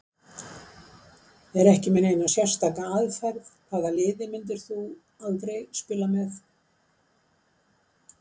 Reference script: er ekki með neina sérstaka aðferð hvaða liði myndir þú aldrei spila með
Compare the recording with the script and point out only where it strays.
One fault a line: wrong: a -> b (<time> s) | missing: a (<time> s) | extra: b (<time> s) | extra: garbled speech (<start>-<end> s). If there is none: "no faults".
no faults